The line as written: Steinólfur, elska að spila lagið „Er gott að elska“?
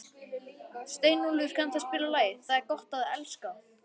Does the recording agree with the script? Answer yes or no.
no